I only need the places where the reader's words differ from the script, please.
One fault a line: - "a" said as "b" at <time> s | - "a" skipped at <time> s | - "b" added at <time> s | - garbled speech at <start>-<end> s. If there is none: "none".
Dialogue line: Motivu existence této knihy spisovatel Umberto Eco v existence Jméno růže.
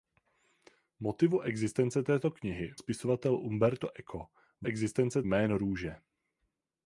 none